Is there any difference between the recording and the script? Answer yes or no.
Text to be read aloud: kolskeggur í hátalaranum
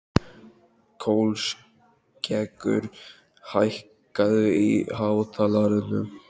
yes